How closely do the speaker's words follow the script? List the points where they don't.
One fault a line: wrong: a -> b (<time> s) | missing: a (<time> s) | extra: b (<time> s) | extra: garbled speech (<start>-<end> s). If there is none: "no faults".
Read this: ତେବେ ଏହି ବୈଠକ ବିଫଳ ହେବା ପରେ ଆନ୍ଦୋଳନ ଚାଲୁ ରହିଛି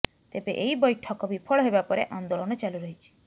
no faults